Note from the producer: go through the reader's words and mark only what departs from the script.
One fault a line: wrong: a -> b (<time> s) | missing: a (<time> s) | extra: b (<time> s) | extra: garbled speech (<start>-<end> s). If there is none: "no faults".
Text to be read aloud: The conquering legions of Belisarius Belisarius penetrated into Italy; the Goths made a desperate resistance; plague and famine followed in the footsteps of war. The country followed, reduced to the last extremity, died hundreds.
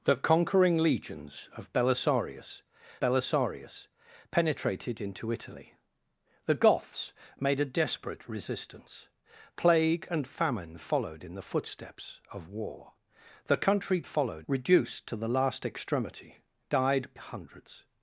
no faults